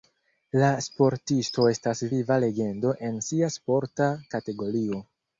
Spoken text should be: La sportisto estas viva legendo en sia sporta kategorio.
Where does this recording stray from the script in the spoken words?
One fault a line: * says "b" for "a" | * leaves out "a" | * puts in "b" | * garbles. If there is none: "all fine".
all fine